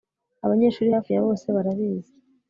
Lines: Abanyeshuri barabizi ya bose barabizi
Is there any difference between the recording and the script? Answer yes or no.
yes